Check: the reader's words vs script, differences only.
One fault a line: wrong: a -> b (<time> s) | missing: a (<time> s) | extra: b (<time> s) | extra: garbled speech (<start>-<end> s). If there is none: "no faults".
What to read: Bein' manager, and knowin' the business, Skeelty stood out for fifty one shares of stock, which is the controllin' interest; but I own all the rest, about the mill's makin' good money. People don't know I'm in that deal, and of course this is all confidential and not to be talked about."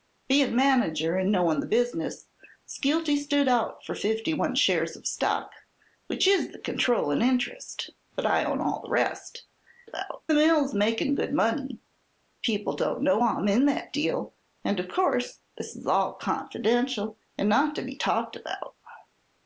no faults